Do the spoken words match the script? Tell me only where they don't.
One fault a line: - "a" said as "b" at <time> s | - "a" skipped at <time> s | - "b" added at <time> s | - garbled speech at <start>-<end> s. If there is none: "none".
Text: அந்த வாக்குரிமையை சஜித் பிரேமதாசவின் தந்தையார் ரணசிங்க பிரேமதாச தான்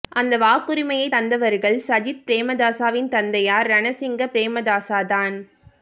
- "தந்தவர்கள்" added at 1.1 s